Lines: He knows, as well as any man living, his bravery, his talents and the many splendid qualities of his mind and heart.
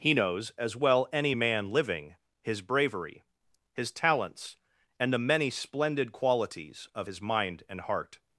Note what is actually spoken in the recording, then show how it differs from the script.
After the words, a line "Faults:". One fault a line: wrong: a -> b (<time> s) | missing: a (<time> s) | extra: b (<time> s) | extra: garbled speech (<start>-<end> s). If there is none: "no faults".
He knows, as well any man living, his bravery, his talents and the many splendid qualities of his mind and heart.
Faults:
missing: as (1.1 s)